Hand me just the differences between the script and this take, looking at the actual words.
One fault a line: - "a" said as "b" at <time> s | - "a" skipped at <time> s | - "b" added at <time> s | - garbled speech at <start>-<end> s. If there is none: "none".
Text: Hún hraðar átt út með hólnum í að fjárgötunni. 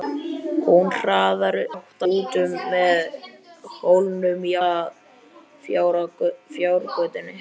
none